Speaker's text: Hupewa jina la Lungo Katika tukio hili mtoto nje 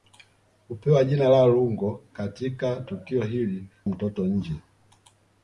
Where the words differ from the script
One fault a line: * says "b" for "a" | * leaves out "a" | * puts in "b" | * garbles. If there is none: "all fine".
all fine